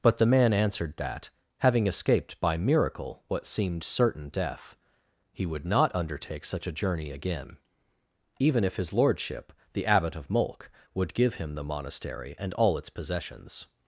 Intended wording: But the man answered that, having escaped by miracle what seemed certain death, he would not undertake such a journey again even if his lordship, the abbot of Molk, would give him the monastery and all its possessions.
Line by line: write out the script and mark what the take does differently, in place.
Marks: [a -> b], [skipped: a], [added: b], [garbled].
But the man answered that, having escaped by miracle what seemed certain death, he would not undertake such a journey again even if his lordship, the abbot of Molk, would give him the monastery and all its possessions.